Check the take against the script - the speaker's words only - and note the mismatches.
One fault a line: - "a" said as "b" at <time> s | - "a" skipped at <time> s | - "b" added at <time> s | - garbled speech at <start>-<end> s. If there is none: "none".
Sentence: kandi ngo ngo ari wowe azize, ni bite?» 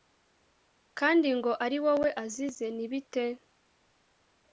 - "ngo" skipped at 1.5 s